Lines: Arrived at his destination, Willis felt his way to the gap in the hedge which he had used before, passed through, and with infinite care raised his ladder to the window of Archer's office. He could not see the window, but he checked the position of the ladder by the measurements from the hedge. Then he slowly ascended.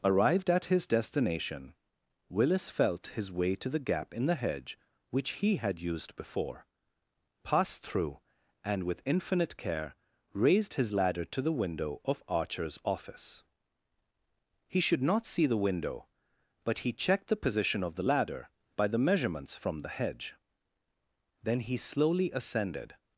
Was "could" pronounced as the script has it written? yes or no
no